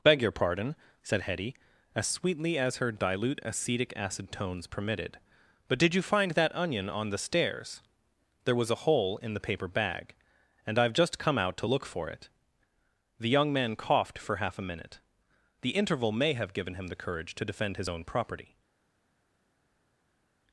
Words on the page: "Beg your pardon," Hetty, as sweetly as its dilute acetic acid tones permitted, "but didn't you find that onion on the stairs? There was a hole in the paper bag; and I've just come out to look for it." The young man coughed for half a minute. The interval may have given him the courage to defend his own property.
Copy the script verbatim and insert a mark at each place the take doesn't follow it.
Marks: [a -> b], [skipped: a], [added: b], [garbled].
"Beg your pardon," [added: said] Hetty, as sweetly as [its -> her] dilute acetic acid tones permitted, "but [didn't -> did] you find that onion on the stairs? There was a hole in the paper bag; and I've just come out to look for it." The young man coughed for half a minute. The interval may have given him the courage to defend his own property.